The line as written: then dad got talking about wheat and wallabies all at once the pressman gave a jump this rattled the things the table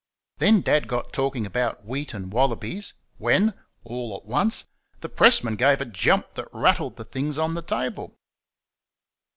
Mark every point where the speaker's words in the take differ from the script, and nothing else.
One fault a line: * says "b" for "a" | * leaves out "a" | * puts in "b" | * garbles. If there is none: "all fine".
* puts in "when"
* says "that" for "this"
* puts in "on"